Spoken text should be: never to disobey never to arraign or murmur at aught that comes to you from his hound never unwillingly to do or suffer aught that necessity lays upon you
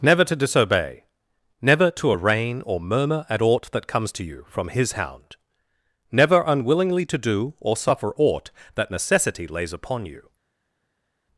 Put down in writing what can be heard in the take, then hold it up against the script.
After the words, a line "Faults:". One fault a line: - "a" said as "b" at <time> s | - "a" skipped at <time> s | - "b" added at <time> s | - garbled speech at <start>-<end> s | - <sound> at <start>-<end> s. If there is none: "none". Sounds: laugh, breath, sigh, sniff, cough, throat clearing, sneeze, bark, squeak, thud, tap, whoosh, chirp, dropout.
never to disobey never to arraign or murmur at aught that comes to you from his hound never unwillingly to do or suffer aught that necessity lays upon you
Faults:
none